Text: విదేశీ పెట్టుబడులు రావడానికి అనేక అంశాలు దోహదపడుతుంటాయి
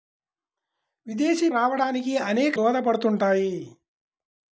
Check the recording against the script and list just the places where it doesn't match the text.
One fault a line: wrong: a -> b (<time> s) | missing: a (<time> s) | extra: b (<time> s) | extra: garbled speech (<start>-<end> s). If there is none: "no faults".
missing: పెట్టుబడులు (1.5 s)
missing: అంశాలు (2.6 s)